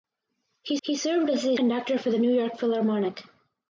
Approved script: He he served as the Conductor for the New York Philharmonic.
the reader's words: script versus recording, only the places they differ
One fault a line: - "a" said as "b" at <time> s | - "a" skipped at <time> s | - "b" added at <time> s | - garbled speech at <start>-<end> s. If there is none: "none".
none